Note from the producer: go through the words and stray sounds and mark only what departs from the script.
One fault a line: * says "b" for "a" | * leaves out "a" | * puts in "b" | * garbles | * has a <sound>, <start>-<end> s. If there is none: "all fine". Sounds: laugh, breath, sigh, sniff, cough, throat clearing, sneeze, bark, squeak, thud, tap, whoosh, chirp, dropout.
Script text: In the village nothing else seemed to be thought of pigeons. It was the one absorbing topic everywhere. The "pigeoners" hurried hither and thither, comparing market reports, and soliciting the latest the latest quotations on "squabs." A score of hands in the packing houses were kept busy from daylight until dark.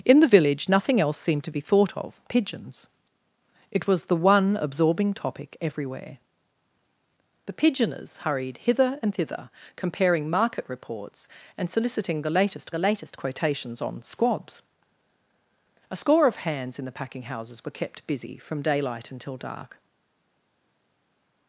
all fine